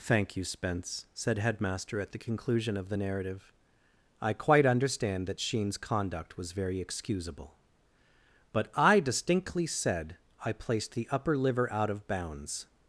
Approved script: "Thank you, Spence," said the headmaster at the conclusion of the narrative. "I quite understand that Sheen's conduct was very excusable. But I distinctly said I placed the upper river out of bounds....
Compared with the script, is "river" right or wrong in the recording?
wrong